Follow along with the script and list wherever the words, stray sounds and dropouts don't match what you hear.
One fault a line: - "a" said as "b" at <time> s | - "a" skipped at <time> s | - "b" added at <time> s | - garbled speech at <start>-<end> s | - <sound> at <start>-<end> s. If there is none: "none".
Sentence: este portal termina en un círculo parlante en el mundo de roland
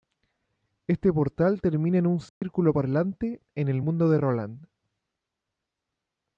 - dropout at 2.3-2.4 s